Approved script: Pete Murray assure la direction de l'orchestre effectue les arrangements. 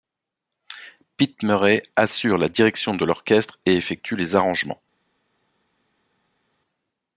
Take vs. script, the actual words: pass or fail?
fail